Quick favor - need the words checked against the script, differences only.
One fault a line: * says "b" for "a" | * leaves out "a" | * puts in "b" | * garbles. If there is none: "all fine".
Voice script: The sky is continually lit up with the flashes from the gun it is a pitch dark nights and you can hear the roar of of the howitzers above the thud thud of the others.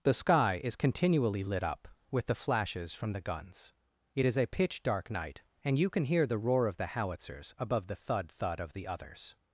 * says "guns" for "gun"
* says "night" for "nights"
* leaves out "of"